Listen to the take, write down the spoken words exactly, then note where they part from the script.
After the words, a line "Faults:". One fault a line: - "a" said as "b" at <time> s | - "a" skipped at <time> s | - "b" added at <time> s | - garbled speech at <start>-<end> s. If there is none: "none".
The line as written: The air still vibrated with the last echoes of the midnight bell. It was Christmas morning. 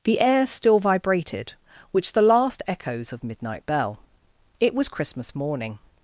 The air still vibrated which the last echoes of midnight bell. It was Christmas morning.
Faults:
- "with" said as "which" at 1.9 s
- "the" skipped at 3.2 s